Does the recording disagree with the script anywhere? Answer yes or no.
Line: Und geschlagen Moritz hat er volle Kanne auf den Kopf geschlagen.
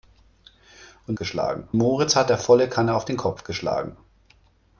no